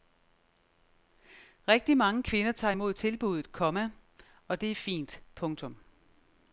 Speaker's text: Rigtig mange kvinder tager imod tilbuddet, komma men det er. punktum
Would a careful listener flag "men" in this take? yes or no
yes